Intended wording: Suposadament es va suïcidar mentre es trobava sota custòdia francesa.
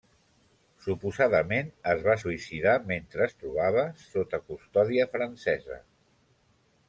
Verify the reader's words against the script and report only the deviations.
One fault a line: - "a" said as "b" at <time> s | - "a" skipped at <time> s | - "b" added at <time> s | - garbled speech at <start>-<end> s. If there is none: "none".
none